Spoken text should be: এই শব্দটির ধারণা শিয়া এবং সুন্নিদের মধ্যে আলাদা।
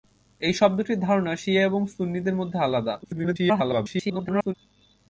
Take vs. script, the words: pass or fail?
fail